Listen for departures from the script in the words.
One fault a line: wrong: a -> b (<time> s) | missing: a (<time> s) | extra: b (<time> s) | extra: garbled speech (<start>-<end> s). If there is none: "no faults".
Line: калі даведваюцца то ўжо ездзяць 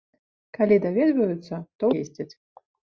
missing: ўжо (1.9 s)